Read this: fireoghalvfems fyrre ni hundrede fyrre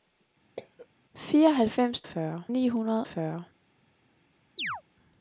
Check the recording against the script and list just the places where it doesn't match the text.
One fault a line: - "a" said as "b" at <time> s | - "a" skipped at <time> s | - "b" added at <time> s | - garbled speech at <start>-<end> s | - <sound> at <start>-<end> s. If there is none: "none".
- cough at 0.6-0.9 s
- chirp at 4.6-4.8 s